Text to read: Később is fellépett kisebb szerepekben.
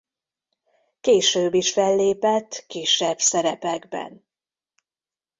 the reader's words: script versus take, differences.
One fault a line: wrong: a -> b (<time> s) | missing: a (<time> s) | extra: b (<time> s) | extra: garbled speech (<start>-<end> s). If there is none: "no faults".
no faults